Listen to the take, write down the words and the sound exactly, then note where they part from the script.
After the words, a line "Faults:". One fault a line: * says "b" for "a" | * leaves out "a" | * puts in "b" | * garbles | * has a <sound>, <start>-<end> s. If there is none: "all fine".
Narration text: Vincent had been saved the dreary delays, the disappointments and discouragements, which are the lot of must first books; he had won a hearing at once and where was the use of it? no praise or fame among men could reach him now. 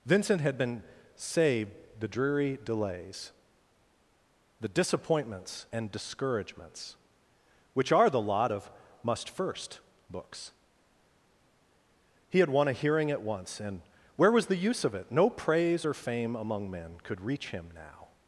Vincent had been saved the dreary delays, the disappointments and discouragements, which are the lot of must first books; he had won a hearing at once and where was the use of it? no praise or fame among men could reach him now.
Faults:
all fine